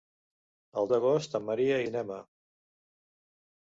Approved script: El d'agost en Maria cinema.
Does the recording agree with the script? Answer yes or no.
yes